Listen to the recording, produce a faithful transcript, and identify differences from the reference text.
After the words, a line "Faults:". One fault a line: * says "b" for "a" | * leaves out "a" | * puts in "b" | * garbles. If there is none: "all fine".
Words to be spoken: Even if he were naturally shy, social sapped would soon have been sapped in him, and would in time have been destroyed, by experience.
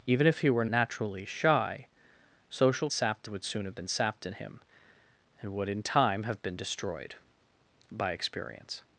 Even if he were naturally shy, social sapped would soon have been sapped in him, and would in time have been destroyed, by experience.
Faults:
all fine